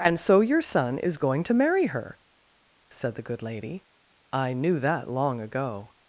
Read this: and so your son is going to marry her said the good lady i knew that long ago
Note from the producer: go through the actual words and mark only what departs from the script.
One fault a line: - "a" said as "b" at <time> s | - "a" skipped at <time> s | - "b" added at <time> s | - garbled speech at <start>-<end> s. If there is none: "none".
none